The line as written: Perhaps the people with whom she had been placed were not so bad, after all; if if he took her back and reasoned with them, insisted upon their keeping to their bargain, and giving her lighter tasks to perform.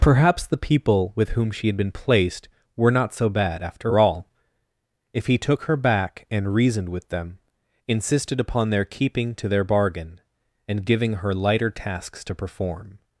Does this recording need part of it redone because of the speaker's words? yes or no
yes